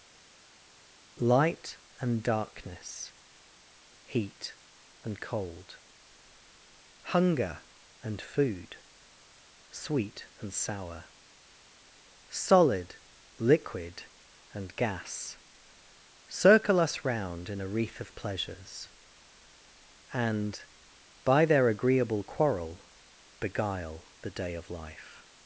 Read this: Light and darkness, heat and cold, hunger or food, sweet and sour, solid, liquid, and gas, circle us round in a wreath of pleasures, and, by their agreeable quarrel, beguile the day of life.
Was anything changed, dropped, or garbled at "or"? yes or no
yes